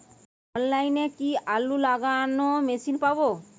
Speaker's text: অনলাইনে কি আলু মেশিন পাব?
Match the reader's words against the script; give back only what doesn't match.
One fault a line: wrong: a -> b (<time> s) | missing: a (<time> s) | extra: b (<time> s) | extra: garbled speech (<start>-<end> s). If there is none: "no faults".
extra: লাগানো (1.9 s)